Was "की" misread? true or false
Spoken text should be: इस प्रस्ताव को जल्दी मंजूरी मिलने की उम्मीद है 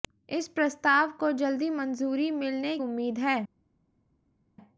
true